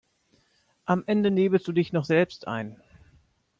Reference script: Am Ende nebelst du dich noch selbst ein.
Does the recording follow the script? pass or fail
pass